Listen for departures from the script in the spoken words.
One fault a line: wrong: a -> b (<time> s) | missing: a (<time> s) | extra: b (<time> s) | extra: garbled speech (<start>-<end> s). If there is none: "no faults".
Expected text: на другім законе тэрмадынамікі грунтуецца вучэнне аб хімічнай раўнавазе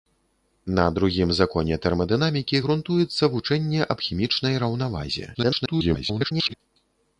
extra: garbled speech (5.3-6.5 s)